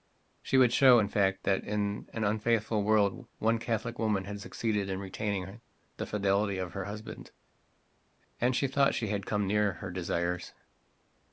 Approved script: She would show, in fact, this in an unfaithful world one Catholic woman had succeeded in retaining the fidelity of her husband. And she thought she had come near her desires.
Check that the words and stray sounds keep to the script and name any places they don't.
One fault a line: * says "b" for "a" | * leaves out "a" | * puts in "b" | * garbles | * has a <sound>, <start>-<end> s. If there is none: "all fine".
* says "that" for "this"